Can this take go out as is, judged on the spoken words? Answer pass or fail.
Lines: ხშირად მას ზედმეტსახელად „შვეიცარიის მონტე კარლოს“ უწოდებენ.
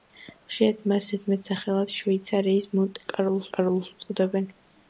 fail